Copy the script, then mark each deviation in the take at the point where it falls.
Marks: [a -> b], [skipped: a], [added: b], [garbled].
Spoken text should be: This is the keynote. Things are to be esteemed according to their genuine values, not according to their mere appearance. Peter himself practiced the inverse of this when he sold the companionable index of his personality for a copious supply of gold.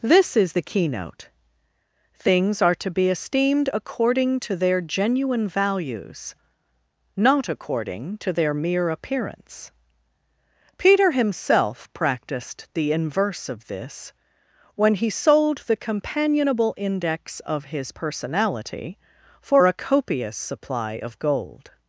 This is the keynote. Things are to be esteemed according to their genuine values, not according to their mere appearance. Peter himself practiced the inverse of this when he sold the companionable index of his personality for a copious supply of gold.